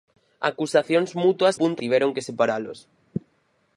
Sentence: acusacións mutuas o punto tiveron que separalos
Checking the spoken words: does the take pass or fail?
pass